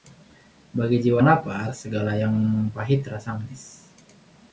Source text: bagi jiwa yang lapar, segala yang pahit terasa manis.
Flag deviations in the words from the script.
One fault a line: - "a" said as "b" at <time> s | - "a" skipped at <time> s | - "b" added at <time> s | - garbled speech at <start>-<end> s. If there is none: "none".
- "yang" skipped at 1.2 s